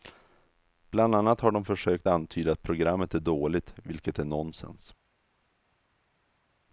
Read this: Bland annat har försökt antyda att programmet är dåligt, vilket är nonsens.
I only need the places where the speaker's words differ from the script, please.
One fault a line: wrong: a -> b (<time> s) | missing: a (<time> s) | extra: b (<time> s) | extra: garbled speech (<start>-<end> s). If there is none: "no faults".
extra: de (1.5 s)